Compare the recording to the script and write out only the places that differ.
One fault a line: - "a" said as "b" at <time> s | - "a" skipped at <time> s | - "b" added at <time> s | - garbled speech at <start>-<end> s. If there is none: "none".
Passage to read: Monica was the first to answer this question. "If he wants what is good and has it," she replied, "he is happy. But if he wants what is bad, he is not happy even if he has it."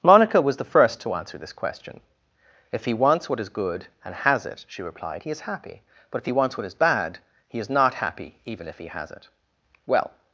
- "Well" added at 9.9 s